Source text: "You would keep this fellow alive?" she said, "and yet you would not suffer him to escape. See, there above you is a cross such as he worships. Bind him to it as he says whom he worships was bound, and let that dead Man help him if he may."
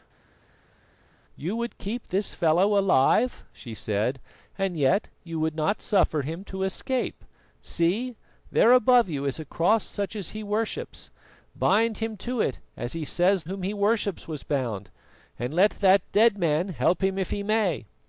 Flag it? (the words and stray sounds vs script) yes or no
no